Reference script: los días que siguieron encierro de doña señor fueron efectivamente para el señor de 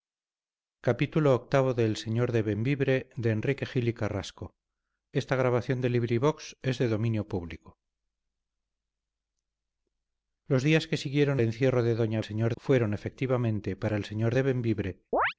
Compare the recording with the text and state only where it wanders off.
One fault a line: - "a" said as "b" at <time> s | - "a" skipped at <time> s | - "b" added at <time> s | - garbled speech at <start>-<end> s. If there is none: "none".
none